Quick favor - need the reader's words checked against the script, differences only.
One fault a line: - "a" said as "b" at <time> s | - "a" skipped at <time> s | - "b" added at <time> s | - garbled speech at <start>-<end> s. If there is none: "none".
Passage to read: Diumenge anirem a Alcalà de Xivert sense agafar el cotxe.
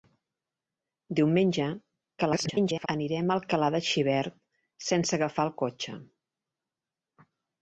- garbled speech at 2.2-2.9 s